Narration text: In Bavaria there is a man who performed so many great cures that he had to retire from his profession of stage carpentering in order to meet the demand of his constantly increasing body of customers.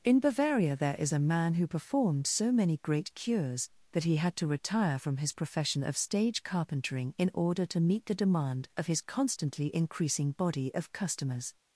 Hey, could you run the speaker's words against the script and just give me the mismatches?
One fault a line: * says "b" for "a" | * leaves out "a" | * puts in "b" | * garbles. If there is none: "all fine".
all fine